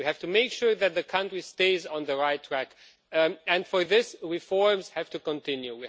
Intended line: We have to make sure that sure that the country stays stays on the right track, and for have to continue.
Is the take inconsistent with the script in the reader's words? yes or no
yes